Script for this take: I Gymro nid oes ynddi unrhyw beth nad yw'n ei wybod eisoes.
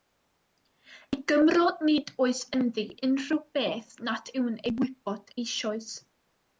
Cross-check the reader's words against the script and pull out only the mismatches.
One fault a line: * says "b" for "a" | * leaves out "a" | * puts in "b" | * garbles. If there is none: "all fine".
all fine